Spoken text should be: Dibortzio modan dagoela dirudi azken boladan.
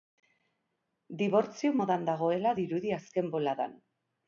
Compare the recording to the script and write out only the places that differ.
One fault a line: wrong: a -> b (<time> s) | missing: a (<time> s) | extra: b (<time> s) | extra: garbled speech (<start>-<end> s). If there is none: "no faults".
no faults